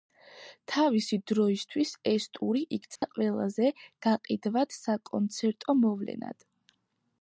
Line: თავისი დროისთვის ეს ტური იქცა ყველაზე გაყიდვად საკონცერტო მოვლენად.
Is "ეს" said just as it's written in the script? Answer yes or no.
yes